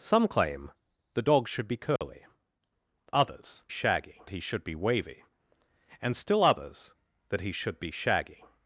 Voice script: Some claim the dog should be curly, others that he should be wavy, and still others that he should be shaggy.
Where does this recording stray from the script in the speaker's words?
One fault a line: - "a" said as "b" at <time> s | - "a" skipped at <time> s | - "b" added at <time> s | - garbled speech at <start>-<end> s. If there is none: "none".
- "that" said as "shaggy" at 3.7 s